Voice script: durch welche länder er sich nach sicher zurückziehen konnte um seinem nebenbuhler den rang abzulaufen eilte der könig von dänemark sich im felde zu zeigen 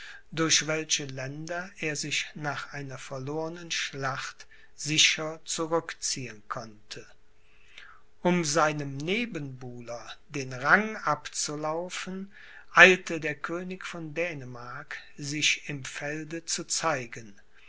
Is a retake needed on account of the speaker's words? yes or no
yes